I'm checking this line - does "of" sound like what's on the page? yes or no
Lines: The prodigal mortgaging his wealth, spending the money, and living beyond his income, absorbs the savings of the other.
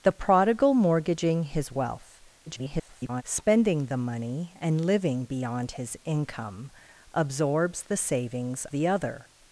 no